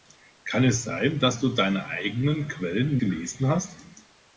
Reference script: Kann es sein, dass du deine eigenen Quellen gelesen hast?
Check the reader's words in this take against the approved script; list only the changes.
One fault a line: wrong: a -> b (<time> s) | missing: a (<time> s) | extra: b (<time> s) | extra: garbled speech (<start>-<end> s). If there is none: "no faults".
no faults